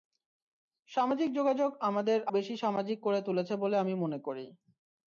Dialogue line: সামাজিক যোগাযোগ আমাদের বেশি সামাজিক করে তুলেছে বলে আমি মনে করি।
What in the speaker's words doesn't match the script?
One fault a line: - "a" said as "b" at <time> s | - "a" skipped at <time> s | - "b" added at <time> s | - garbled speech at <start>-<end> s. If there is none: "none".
none